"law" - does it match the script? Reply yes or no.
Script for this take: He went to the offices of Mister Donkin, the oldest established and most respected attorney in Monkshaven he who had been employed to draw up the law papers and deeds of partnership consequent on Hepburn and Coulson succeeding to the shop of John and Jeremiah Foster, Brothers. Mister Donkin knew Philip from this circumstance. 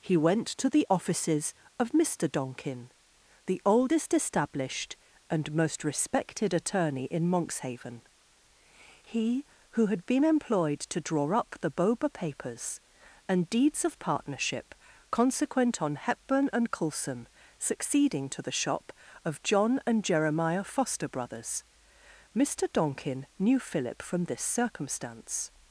no